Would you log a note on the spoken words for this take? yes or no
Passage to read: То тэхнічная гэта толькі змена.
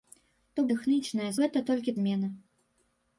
no